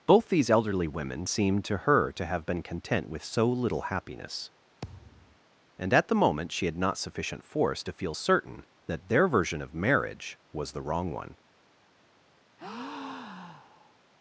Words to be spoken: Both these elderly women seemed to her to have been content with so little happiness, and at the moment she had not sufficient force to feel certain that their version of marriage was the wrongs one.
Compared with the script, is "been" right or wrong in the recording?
right